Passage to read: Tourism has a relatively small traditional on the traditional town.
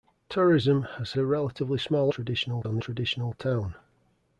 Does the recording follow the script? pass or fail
pass